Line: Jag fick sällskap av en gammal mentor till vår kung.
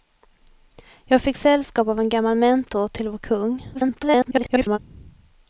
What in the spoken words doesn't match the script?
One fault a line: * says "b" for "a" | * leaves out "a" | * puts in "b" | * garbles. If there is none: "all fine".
* garbles